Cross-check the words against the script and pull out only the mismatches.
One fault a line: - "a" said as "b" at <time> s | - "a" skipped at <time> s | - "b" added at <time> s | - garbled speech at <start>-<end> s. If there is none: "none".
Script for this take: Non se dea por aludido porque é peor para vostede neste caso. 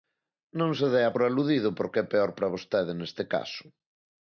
none